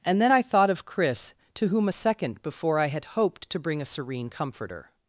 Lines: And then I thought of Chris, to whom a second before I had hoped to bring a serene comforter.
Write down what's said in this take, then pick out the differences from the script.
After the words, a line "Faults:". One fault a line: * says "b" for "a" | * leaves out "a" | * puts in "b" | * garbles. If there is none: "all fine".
And then I thought of Chris, to whom a second before I had hoped to bring a serene comforter.
Faults:
all fine